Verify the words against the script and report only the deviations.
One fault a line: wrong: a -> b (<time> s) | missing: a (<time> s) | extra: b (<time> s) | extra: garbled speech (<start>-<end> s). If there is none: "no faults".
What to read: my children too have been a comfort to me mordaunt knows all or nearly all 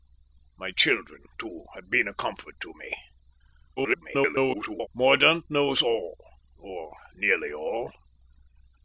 extra: garbled speech (3.8-4.9 s)